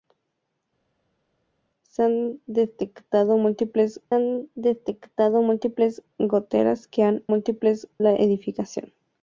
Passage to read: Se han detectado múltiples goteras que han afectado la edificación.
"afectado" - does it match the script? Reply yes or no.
no